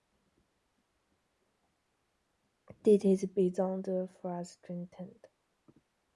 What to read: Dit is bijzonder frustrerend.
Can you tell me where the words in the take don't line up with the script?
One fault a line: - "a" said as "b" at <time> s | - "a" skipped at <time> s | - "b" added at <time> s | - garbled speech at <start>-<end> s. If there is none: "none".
none